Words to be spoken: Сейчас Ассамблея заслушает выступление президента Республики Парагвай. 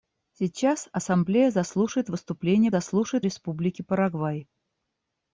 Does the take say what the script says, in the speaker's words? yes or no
no